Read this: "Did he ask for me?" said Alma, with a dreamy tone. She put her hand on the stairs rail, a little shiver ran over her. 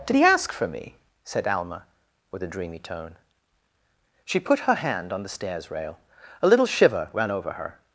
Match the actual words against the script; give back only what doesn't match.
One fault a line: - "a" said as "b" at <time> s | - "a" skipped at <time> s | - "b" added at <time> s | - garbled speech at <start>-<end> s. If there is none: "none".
none